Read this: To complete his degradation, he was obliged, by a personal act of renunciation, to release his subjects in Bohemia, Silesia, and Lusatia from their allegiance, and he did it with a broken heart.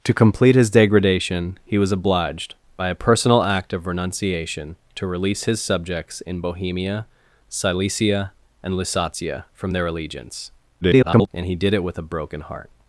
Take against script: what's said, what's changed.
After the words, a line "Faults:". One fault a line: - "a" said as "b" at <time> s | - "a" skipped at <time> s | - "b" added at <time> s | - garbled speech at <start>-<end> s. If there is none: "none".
To complete his degradation, he was obliged, by a personal act of renunciation, to release his subjects in Bohemia, Silesia, and Lusatia from their allegiance, [garbled] and he did it with a broken heart.
Faults:
- garbled speech at 10.8-11.3 s